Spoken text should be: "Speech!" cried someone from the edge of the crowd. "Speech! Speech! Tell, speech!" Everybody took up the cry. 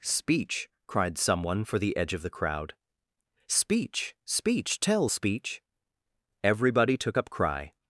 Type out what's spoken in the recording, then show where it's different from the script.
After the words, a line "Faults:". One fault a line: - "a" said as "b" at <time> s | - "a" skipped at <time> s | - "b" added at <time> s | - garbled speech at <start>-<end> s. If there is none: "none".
"Speech!" cried someone for the edge of the crowd. "Speech! Speech! Tell, speech!" Everybody took up cry.
Faults:
- "from" said as "for" at 1.6 s
- "the" skipped at 7.3 s